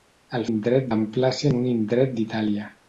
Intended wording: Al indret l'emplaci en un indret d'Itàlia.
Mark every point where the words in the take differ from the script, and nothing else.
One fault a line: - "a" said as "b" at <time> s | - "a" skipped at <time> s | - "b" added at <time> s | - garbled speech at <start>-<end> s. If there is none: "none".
none